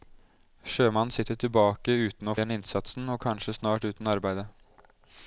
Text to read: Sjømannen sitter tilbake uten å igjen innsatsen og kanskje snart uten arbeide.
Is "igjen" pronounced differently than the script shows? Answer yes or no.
no